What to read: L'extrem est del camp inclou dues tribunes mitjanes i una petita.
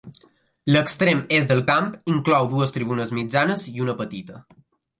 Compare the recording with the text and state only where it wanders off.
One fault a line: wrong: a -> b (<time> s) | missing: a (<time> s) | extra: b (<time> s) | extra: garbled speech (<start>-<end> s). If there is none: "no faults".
no faults